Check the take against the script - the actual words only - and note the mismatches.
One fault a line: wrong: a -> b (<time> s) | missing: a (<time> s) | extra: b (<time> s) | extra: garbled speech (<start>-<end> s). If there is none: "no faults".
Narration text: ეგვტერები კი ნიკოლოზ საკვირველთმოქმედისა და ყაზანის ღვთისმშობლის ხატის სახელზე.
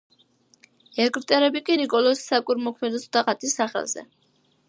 missing: ყაზანის ღვთისმშობლის (3.2 s)